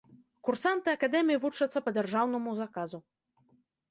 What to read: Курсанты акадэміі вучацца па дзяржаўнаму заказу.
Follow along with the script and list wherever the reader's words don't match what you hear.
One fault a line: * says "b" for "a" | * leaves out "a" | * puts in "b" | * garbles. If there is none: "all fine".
all fine